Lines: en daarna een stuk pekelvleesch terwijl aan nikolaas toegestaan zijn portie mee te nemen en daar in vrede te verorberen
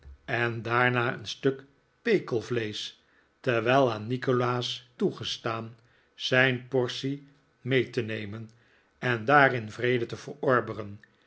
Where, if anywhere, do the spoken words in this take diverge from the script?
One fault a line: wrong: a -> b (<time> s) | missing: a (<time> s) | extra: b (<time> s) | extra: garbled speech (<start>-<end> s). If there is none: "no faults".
no faults